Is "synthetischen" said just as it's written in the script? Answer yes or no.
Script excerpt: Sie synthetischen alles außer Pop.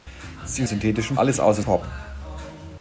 yes